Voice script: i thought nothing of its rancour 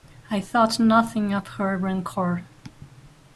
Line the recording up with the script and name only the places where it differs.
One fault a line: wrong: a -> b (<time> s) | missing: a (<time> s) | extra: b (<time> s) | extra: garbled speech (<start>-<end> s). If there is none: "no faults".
wrong: its -> her (1.5 s)